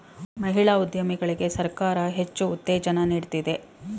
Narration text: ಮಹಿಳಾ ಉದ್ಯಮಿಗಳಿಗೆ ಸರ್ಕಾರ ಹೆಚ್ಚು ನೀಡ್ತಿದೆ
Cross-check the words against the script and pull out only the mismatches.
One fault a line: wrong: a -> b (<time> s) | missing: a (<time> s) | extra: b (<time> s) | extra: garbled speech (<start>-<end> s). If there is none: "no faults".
extra: ಉತ್ತೇಜನ (2.5 s)